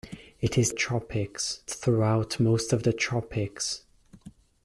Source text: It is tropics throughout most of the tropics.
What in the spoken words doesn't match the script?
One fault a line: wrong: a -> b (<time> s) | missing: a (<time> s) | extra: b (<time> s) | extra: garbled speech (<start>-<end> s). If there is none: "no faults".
no faults